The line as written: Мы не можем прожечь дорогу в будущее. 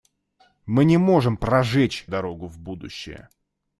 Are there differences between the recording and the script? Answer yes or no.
no